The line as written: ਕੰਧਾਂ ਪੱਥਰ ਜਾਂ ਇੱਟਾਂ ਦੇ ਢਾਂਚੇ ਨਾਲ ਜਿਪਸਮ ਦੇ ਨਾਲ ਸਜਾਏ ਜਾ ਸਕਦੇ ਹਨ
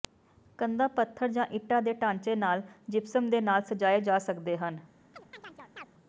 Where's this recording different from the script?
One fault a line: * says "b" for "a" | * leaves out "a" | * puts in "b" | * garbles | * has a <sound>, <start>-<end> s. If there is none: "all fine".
* has a chirp, 5.1-5.9 s